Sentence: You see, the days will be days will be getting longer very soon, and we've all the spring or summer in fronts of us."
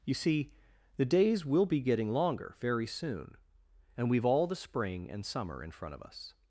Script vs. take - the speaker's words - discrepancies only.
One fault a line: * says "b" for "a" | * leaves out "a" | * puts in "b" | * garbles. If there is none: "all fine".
* leaves out "days will be"
* says "and" for "or"
* says "front" for "fronts"